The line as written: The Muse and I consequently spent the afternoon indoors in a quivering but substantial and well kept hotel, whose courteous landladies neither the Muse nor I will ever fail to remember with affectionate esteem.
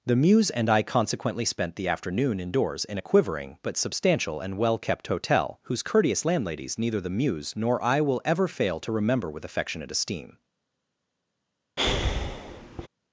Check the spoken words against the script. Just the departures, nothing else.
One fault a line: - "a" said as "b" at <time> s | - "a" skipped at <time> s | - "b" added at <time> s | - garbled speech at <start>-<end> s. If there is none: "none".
none